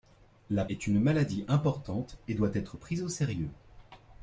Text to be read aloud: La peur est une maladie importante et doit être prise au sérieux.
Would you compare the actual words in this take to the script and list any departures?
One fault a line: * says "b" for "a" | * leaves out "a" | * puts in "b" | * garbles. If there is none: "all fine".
* leaves out "peur"